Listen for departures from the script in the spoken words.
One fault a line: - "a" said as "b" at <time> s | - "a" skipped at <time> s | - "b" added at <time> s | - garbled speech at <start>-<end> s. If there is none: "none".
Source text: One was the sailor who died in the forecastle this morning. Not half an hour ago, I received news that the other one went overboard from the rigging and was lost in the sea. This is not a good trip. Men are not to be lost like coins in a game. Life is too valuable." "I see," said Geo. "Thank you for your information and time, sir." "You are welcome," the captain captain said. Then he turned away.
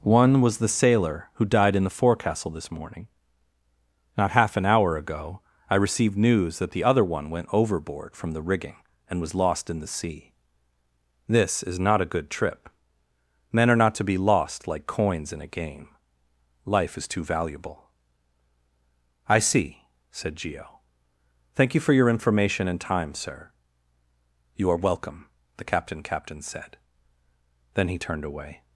none